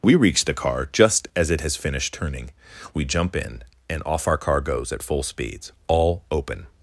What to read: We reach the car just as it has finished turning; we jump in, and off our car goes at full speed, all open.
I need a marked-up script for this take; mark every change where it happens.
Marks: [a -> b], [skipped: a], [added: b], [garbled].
We reach the car just as it has finished turning; we jump in, and off our car goes at full [speed, -> speeds] all open.